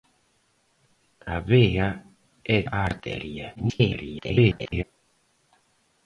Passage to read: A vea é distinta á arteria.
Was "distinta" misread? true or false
true